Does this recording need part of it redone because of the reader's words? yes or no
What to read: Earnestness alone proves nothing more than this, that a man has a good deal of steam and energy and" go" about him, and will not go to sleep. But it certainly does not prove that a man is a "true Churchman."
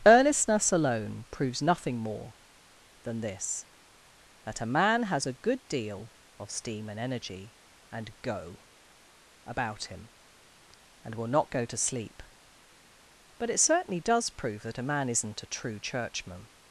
yes